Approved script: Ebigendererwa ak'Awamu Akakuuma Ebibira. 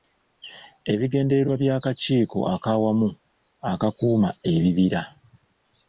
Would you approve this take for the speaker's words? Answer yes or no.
no